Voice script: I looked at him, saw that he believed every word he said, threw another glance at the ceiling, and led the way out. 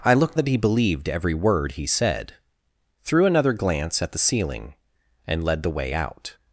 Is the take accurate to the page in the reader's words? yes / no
no